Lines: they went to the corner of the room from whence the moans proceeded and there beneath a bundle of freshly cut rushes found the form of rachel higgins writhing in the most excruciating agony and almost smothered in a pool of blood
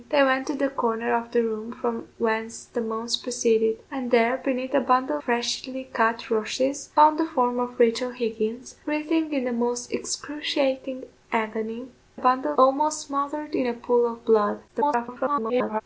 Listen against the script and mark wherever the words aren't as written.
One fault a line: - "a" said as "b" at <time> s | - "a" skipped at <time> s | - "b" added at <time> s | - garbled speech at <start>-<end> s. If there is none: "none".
- "of" skipped at 5.2 s
- "and" said as "bundle" at 12.1 s
- garbled speech at 14.7-15.8 s